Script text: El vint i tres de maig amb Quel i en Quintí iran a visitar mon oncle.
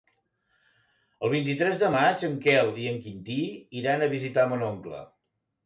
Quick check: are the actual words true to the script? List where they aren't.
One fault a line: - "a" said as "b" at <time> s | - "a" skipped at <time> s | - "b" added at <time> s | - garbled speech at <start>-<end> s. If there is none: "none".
- "amb" said as "en" at 2.3 s